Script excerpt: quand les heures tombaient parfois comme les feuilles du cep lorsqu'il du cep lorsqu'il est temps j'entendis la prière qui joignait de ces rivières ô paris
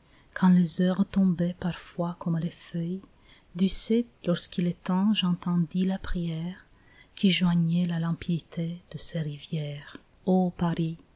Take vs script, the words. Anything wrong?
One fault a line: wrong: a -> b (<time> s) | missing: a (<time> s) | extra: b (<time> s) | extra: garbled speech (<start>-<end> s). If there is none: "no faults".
missing: du cep lorsqu'il (4.7 s)
extra: la limpidité (7.8 s)